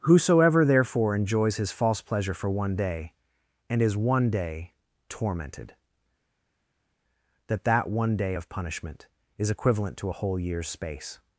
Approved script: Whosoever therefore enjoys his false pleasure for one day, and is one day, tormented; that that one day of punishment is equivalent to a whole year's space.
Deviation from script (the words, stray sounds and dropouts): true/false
false